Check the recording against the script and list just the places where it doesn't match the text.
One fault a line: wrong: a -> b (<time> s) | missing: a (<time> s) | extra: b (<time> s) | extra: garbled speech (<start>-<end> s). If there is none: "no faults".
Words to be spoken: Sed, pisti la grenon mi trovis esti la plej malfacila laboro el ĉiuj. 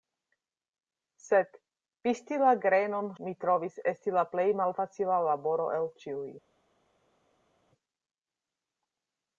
no faults